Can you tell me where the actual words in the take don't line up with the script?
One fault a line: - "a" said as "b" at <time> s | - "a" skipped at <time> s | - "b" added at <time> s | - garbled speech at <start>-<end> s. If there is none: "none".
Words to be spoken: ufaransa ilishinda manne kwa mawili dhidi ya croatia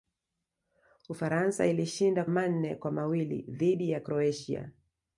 none